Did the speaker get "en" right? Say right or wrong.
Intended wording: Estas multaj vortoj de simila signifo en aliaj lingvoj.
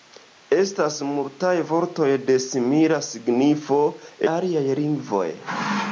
wrong